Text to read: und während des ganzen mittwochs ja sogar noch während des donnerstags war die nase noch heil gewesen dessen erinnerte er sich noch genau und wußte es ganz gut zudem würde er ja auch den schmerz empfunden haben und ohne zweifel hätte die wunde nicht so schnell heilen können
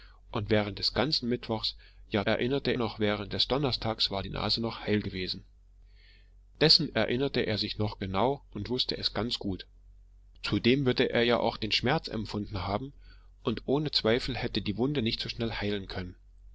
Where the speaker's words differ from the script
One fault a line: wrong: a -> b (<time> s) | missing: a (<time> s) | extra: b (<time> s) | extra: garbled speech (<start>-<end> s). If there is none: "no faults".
wrong: sogar -> erinnerte (2.3 s)